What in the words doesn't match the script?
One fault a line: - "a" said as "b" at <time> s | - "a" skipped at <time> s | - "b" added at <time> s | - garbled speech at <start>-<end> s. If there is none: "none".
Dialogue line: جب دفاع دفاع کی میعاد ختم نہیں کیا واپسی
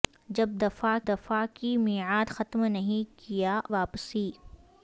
none